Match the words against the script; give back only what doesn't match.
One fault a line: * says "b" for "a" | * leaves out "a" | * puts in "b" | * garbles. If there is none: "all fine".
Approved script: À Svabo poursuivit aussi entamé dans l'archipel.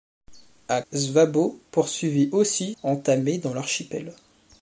all fine